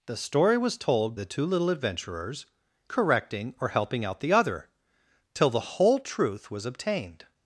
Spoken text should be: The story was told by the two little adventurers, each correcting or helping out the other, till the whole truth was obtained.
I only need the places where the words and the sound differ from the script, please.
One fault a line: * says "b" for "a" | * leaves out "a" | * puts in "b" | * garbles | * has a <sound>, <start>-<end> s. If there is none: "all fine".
* leaves out "by"
* leaves out "each"